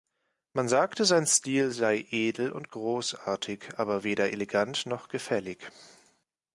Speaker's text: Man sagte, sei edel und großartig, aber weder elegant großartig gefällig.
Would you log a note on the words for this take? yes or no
yes